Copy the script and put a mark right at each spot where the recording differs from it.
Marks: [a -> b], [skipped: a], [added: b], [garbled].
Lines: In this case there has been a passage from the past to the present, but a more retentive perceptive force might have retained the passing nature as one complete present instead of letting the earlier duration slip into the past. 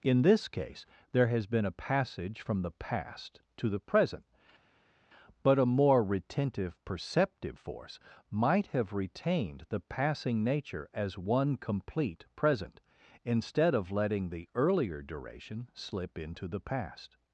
In this case there has been a passage from the past to the present, but a more retentive perceptive force might have retained the passing nature as one complete present instead of letting the earlier duration slip into the past.